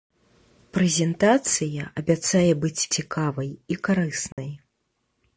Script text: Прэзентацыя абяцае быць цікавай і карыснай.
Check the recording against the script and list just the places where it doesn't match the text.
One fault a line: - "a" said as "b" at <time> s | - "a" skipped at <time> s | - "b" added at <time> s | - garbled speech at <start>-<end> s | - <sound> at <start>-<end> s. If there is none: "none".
- dropout at 4.3-4.4 s